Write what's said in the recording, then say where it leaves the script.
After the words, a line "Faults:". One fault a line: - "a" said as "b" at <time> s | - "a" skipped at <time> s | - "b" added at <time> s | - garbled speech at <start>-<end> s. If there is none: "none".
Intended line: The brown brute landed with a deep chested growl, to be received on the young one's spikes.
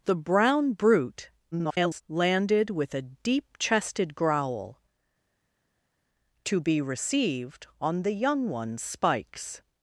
The brown brute [garbled] landed with a deep chested growl, to be received on the young one's spikes.
Faults:
- garbled speech at 1.5-2.0 s